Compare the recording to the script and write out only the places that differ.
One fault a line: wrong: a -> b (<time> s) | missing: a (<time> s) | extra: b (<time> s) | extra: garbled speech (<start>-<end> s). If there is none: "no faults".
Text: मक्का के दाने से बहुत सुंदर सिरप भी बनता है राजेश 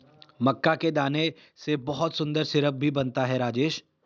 no faults